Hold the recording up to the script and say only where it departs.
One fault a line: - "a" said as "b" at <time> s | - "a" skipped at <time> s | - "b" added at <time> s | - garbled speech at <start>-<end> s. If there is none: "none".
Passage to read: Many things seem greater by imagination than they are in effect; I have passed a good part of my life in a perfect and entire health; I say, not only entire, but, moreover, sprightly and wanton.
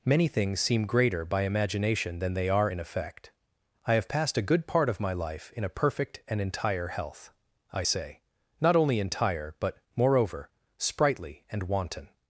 none